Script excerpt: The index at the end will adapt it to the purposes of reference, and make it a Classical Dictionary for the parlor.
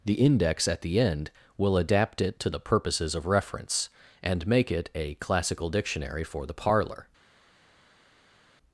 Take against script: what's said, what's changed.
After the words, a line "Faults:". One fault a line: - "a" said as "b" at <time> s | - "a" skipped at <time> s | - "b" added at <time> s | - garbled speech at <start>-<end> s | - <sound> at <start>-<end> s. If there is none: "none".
The index at the end will adapt it to the purposes of reference, and make it a Classical Dictionary for the parlor.
Faults:
none